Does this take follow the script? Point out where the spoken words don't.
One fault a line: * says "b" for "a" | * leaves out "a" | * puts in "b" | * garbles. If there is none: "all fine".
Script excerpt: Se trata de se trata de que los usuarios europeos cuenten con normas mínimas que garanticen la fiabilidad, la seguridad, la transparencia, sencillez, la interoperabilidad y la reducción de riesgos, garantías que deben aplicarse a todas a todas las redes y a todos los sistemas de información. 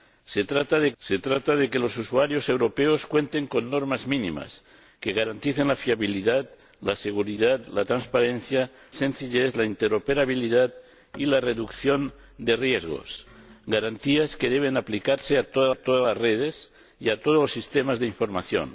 all fine